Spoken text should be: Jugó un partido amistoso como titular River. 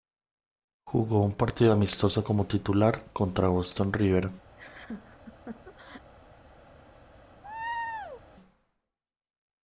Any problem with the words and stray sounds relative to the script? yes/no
yes